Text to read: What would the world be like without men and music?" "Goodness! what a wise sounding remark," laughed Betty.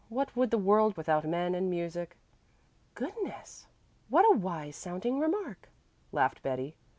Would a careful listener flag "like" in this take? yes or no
yes